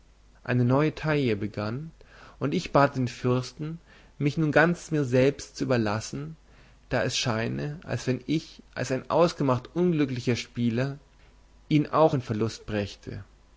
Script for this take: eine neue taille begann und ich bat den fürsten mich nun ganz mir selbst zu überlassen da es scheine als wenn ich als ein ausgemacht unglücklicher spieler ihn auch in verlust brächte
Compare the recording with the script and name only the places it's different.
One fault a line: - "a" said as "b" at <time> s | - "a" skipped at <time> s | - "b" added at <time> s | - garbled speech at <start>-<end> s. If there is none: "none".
none